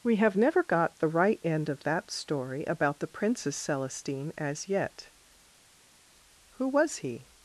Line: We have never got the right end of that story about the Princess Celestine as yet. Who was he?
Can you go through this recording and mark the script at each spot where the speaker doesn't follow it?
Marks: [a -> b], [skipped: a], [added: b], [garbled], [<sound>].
We have never got the right end of that story about the Princess Celestine as yet. Who was he?